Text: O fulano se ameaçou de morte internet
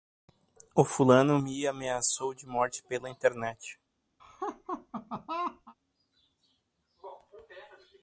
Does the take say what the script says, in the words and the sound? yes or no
no